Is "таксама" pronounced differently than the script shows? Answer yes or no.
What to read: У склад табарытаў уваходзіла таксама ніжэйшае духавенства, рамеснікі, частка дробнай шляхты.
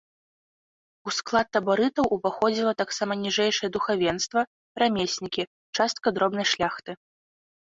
no